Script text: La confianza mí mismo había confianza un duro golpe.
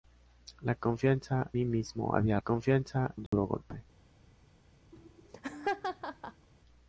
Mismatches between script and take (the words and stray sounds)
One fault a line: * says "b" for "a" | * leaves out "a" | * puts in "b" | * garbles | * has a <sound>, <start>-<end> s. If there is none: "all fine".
* has a dropout, 3.3-3.3 s
* has a laugh, 4.9-6.5 s